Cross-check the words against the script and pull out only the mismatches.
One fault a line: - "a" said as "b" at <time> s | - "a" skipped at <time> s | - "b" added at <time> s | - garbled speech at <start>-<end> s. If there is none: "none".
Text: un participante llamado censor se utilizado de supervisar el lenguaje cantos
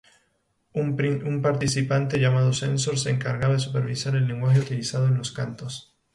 - "utilizado" said as "encargaba" at 3.1 s
- "utilizado en los" added at 4.6 s